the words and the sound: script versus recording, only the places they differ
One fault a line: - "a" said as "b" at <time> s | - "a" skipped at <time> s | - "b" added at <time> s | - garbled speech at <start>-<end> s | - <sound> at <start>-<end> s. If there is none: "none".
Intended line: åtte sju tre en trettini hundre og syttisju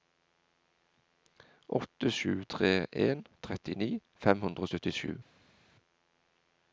- "fem" added at 4.3 s